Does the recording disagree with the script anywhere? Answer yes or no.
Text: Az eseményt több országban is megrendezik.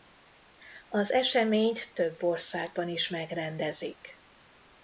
no